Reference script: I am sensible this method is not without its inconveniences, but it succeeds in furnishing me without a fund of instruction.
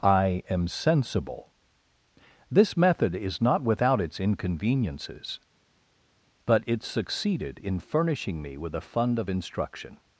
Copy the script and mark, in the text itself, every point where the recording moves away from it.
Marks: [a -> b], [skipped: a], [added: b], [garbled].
I am sensible this method is not without its inconveniences, but it [succeeds -> succeeded] in furnishing me [without -> with] a fund of instruction.